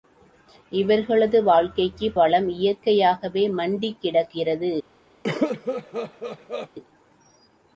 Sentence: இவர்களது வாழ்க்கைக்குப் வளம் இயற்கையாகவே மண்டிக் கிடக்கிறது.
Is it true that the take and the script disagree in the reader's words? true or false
false